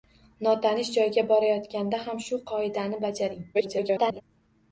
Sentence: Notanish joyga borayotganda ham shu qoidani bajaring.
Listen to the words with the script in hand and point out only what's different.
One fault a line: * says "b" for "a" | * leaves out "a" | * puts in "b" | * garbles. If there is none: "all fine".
* garbles